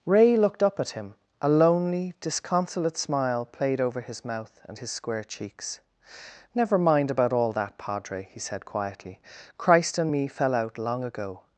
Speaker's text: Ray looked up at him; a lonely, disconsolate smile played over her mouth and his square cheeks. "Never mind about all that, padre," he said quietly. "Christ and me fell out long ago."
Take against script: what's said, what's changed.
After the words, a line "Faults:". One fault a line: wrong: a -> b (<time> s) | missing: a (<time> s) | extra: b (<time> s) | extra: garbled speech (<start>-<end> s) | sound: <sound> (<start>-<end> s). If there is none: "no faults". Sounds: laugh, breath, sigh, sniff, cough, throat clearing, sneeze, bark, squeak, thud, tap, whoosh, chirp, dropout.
Ray looked up at him; a lonely, disconsolate smile played over his mouth and his square cheeks. "Never mind about all that, padre," he said quietly. "Christ and me fell out long ago."
Faults:
wrong: her -> his (4.0 s)